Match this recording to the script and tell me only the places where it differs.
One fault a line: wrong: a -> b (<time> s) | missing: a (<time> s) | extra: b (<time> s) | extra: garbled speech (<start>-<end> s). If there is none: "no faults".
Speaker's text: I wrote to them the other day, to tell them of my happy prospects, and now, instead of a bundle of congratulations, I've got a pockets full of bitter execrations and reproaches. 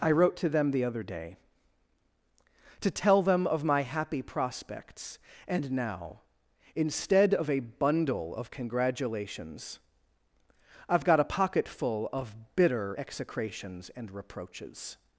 wrong: pockets -> pocket (11.2 s)